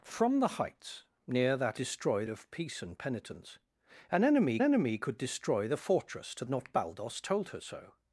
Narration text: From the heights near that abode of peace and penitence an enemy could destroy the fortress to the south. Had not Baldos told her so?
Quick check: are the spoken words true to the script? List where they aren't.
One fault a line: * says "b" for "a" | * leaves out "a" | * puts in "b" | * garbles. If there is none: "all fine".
* says "destroy" for "abode"
* puts in "enemy"
* leaves out "the south Had"